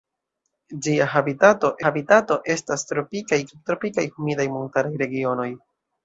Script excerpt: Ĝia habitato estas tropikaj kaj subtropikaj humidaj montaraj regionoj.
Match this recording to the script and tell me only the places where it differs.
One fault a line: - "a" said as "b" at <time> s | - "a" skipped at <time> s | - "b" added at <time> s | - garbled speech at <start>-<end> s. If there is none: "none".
- "habitato" added at 1.8 s
- "kaj" skipped at 3.4 s